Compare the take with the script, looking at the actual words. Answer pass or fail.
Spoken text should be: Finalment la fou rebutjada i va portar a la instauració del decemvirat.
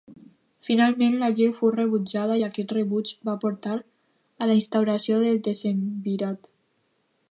fail